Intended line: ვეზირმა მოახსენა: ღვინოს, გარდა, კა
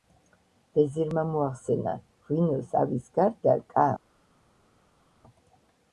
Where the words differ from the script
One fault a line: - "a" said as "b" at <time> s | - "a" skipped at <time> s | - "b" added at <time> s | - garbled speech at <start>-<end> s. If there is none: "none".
- "ავის" added at 2.8 s